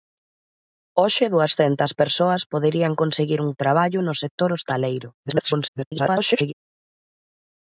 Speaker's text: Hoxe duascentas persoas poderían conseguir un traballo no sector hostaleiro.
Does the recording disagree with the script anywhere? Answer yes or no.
yes